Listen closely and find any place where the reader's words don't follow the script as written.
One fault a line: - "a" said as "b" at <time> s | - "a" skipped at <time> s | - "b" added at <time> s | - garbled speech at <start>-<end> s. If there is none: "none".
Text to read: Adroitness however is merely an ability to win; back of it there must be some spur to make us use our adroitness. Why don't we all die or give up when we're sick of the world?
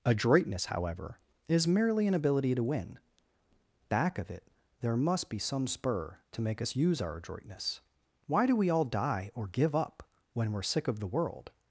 - "don't" said as "do" at 8.5 s